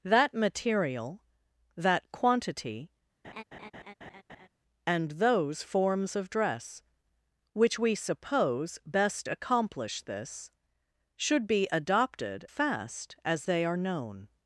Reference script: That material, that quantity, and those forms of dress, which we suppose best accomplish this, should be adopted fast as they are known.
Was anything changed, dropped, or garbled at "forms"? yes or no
no